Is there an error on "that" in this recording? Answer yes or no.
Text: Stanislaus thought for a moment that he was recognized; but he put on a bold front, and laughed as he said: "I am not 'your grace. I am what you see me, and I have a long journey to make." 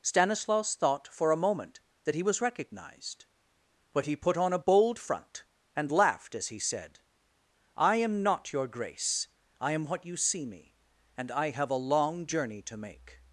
no